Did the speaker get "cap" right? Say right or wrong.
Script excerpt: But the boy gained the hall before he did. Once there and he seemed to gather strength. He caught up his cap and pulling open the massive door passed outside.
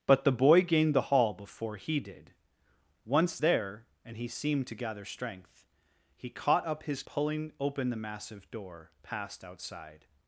wrong